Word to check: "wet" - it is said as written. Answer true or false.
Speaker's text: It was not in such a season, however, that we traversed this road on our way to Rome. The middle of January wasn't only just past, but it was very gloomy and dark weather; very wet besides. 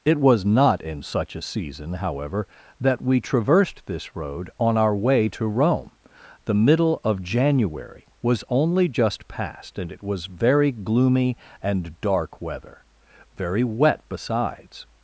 true